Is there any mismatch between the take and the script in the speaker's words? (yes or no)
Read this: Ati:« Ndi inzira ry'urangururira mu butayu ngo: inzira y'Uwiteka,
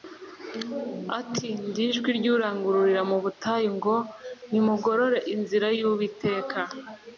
yes